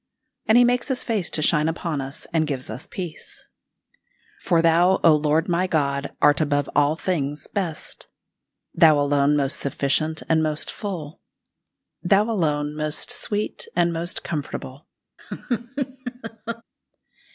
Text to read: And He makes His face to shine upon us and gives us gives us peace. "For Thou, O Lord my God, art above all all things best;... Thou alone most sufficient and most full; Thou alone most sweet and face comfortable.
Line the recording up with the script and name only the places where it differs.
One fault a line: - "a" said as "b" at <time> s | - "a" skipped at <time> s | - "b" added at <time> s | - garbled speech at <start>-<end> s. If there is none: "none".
- "gives us" skipped at 2.9 s
- "all" skipped at 6.9 s
- "face" said as "most" at 13.9 s